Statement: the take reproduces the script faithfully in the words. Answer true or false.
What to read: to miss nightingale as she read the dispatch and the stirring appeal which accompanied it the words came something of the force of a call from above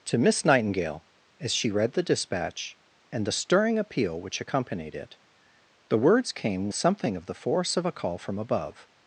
true